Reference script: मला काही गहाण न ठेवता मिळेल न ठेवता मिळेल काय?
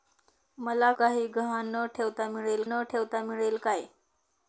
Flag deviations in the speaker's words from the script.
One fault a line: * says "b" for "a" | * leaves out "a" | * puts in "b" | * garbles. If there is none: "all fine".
all fine